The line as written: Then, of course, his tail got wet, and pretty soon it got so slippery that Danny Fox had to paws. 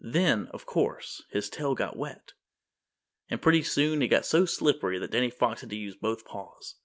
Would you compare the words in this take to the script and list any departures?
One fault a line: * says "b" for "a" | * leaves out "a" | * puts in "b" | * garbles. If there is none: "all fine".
* puts in "use both"